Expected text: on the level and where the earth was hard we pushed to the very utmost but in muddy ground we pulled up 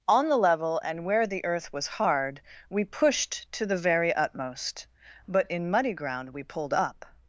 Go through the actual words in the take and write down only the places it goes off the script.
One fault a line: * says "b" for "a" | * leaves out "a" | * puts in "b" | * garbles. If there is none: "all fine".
all fine